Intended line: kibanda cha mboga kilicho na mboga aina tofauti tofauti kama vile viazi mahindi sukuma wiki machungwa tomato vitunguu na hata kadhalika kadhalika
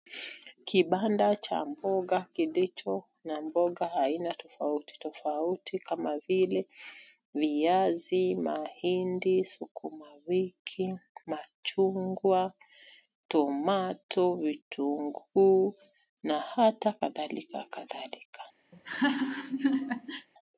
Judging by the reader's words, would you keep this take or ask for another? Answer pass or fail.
pass